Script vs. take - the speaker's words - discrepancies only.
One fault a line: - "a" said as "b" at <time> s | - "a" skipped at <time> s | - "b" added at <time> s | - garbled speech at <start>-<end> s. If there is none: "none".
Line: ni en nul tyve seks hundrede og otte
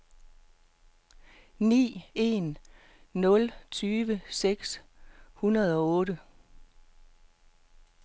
none